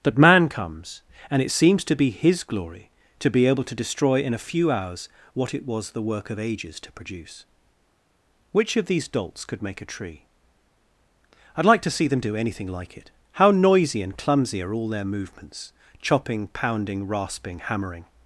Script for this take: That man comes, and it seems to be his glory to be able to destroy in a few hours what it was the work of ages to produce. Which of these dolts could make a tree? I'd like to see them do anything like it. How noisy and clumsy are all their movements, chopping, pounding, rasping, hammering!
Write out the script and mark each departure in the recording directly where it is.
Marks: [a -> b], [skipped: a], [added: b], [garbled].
That man comes, and it seems to be his glory to be able to destroy in a few hours what it was the work of ages to produce. Which of these dolts could make a tree? I'd like to see them do anything like it. How noisy and clumsy are all their movements, chopping, pounding, rasping, hammering!